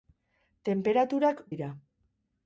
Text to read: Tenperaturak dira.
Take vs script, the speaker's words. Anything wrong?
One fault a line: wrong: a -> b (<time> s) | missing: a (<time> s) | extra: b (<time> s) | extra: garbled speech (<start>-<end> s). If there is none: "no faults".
no faults